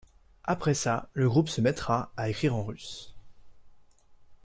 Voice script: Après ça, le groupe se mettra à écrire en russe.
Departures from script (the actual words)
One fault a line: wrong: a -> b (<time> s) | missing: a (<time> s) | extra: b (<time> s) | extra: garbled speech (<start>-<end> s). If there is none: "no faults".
no faults